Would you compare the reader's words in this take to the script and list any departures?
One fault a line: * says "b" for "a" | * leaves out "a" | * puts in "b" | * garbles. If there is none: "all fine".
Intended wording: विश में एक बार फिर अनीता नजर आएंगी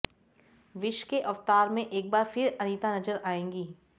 * puts in "के अवतार"